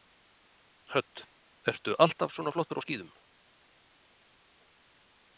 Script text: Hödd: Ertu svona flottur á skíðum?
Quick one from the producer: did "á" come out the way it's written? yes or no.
yes